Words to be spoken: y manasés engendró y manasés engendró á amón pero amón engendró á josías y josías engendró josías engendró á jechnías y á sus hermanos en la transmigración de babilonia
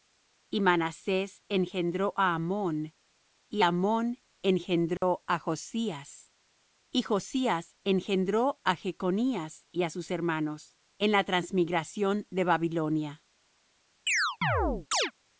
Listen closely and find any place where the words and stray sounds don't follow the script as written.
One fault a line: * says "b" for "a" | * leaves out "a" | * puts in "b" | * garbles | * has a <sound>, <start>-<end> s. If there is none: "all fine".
* leaves out "y manasés engendró"
* says "y" for "pero"
* has a dropout, 5.0-5.0 s
* leaves out "josías engendró"
* has a chirp, 14.1-15.1 s